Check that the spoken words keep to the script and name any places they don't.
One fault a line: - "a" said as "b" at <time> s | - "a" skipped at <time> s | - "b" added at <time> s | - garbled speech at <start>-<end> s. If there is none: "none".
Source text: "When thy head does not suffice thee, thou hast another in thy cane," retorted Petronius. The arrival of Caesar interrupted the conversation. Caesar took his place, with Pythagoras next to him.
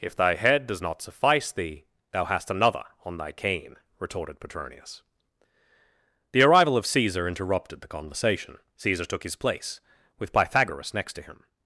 - "When" said as "If" at 0.0 s
- "in" said as "on" at 3.0 s